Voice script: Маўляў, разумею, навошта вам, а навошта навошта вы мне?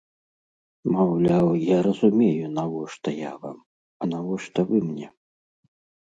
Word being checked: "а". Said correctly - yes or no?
yes